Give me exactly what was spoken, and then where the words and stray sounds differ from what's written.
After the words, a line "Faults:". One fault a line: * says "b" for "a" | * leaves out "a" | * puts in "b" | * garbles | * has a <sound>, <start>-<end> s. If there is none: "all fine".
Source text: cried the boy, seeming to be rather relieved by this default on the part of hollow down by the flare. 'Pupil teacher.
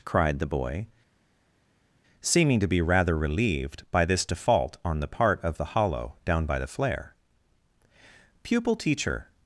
cried the boy, seeming to be rather relieved by this default on the part of the hollow down by the flare. 'Pupil teacher.
Faults:
* puts in "the"